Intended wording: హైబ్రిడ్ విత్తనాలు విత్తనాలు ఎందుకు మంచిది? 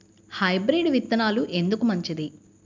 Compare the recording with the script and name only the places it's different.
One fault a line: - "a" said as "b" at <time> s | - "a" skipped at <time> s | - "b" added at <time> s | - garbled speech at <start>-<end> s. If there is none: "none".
- "విత్తనాలు" skipped at 1.4 s